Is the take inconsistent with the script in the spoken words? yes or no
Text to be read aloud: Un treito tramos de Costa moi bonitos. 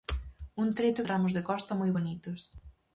no